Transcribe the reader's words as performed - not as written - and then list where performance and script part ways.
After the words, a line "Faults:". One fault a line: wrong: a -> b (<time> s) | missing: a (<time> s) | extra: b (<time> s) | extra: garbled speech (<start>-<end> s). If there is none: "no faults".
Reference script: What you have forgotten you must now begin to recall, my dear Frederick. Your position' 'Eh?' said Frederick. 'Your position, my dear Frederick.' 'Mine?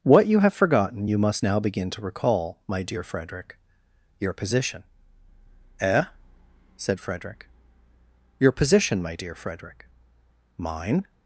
What you have forgotten you must now begin to recall, my dear Frederick. Your position' 'Eh?' said Frederick. 'Your position, my dear Frederick.' 'Mine?
Faults:
no faults